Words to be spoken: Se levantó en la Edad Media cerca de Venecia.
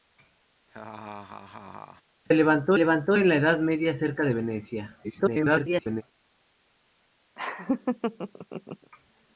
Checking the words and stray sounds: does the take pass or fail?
fail